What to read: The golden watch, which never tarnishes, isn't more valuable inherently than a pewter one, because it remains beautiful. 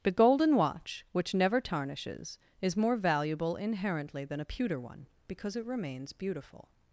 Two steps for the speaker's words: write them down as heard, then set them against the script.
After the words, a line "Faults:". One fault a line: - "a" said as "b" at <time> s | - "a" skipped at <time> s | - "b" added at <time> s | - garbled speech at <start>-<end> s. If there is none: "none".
The golden watch, which never tarnishes, is more valuable inherently than a pewter one, because it remains beautiful.
Faults:
- "isn't" said as "is" at 2.6 s